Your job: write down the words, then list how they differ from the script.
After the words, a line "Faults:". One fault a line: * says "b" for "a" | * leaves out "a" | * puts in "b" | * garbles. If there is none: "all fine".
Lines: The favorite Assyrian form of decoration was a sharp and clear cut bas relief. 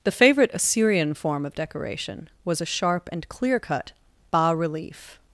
The favorite Assyrian form of decoration was a sharp and clear cut bas relief.
Faults:
all fine